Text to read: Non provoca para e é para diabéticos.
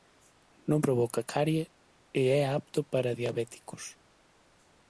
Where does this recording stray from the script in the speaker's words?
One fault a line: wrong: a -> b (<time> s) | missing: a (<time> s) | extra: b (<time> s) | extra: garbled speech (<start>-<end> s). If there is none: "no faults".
wrong: para -> carie (1.3 s)
extra: apto (2.6 s)